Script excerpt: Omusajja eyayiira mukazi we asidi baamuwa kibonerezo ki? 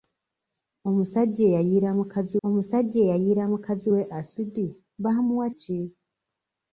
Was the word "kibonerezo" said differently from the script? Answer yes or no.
yes